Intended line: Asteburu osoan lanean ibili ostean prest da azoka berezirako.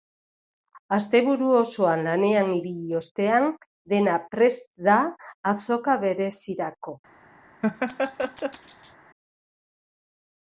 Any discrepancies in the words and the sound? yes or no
yes